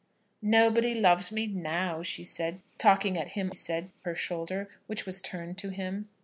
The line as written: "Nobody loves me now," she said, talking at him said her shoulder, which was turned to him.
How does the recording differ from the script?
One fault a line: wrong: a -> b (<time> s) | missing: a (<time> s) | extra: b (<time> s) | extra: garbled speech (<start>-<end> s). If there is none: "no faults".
no faults